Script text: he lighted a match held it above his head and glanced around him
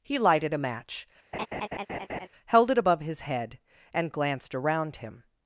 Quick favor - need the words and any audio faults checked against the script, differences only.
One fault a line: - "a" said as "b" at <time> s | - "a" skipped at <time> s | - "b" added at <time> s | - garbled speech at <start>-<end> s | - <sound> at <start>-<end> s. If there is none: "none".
- laugh at 1.3-2.3 s